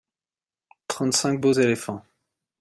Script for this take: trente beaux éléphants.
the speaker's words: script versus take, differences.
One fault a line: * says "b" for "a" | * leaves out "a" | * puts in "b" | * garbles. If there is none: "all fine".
* puts in "cinq"